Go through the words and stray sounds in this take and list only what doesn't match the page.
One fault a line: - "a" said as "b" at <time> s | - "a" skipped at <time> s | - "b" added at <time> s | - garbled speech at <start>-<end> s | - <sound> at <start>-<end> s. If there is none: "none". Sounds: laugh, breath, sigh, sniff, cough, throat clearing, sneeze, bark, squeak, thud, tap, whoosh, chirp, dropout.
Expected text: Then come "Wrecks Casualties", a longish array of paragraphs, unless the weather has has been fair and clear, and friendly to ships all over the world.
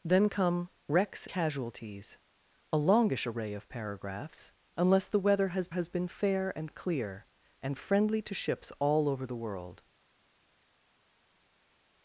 none